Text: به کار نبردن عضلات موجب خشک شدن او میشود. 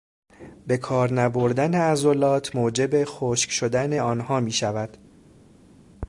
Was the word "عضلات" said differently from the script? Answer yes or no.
no